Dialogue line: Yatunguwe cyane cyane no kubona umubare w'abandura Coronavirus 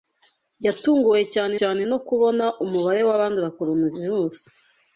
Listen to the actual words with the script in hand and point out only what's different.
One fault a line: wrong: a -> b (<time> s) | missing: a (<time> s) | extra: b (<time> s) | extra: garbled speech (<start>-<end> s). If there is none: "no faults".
no faults